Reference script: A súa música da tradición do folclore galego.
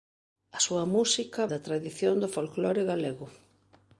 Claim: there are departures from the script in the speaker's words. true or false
false